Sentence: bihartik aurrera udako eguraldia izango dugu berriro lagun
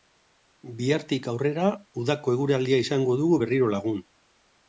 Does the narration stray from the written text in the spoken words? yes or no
no